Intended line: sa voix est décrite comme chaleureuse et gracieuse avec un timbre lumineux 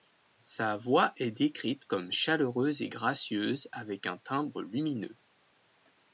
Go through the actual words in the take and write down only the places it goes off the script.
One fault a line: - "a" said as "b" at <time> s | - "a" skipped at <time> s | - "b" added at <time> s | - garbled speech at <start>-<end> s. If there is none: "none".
none